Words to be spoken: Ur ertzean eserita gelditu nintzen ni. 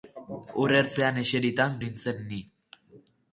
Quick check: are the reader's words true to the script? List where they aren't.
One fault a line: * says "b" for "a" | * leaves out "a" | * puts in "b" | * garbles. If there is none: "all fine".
* leaves out "gelditu"